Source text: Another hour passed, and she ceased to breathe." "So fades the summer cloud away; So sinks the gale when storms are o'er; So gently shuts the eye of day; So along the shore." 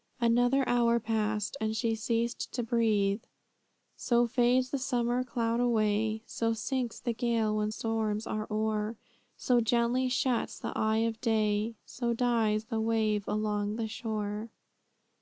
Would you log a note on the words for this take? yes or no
yes